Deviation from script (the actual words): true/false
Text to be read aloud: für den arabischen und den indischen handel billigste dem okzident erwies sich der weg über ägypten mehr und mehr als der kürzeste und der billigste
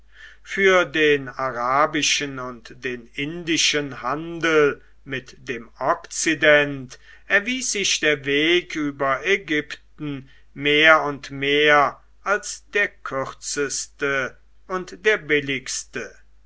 true